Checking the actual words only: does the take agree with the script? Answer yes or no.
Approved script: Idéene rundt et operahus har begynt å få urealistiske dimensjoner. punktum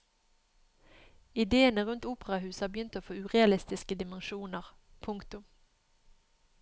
no